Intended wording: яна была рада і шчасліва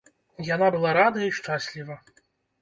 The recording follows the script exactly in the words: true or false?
true